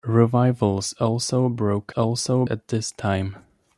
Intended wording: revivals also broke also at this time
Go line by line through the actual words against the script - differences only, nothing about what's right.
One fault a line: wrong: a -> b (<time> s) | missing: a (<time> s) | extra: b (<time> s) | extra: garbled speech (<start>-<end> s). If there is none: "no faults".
no faults